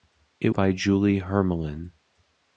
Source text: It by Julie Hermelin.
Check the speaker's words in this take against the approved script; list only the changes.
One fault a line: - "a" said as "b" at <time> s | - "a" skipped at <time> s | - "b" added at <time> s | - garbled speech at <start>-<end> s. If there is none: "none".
none